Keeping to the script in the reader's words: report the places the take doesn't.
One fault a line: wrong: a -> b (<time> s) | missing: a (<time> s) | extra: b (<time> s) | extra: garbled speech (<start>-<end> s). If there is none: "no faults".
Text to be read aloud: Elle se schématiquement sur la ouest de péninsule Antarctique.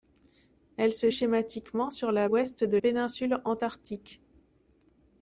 no faults